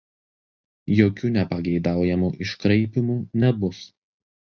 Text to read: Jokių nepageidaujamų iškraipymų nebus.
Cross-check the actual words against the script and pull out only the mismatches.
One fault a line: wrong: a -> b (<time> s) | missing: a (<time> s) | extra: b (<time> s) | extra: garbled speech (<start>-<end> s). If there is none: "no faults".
no faults